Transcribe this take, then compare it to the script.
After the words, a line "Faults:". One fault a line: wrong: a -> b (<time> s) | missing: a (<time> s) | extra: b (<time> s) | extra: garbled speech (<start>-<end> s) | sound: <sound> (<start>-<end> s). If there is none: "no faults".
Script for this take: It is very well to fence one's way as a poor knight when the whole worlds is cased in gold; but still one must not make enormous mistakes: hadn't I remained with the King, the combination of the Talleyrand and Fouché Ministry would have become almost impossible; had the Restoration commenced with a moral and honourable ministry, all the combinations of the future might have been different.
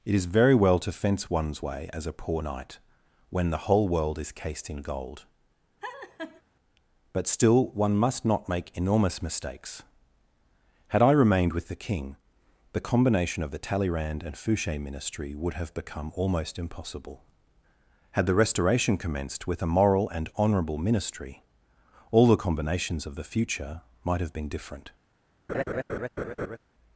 It is very well to fence one's way as a poor knight when the whole world is cased in gold; but still one must not make enormous mistakes: had I remained with the King, the combination of the Talleyrand and Fouché Ministry would have become almost impossible; had the Restoration commenced with a moral and honourable ministry, all the combinations of the future might have been different.
Faults:
wrong: worlds -> world (3.9 s)
sound: laugh (5.8-6.4 s)
wrong: hadn't -> had (10.9 s)
sound: laugh (25.5-26.6 s)